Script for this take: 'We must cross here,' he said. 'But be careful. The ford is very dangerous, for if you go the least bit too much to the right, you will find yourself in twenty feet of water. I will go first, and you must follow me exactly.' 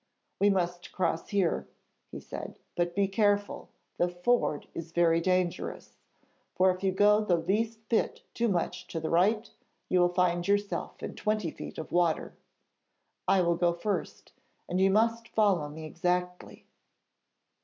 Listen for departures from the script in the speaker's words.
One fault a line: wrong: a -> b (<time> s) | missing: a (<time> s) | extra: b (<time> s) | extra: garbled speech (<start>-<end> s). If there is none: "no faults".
no faults